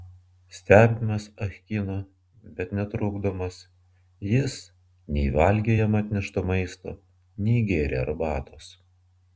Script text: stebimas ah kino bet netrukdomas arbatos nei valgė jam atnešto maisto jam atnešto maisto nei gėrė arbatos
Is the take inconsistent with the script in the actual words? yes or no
yes